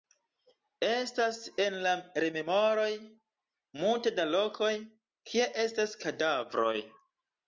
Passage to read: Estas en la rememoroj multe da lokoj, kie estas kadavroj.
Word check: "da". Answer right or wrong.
right